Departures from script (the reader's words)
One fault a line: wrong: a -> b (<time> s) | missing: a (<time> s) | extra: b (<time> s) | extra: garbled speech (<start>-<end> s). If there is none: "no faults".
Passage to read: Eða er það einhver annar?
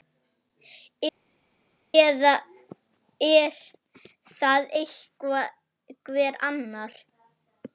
no faults